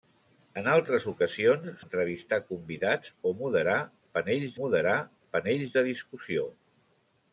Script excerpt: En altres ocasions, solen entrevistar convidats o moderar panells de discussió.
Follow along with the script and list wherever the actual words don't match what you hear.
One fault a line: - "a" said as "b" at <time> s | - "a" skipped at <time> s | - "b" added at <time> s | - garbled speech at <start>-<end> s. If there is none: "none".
- "solen" skipped at 1.7 s
- "moderar panells" added at 4.6 s